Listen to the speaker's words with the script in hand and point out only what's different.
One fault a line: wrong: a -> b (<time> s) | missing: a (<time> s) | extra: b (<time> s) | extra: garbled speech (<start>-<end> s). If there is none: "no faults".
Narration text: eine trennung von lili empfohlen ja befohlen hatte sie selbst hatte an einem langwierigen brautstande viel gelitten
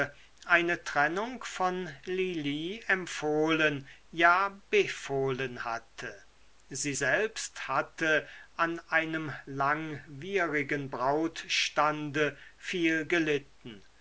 no faults